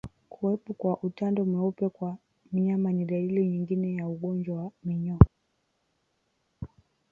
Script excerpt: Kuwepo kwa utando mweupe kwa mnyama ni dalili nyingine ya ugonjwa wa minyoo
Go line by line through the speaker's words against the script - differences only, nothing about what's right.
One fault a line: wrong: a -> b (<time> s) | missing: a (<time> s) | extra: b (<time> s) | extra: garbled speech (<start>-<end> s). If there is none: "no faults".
no faults